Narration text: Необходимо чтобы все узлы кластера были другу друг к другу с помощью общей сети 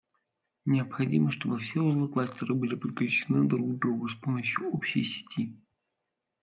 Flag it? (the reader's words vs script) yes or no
yes